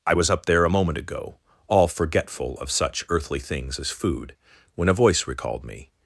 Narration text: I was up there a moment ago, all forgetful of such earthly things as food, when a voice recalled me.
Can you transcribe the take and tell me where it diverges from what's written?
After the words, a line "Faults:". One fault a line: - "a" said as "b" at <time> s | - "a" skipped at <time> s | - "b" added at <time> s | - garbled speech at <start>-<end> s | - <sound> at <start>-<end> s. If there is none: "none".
I was up there a moment ago, all forgetful of such earthly things as food, when a voice recalled me.
Faults:
none